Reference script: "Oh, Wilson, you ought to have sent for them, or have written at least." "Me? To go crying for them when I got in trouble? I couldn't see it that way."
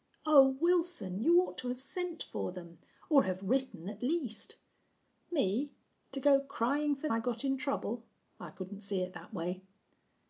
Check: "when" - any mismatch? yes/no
yes